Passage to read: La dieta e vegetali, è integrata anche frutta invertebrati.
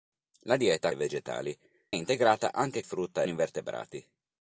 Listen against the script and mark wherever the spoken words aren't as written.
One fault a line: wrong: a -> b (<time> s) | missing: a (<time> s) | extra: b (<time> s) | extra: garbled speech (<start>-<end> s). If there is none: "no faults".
no faults